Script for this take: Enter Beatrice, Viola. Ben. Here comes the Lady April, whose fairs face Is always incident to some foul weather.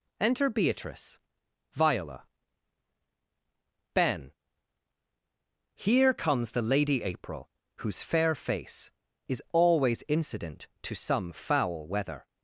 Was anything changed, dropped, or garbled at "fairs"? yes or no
yes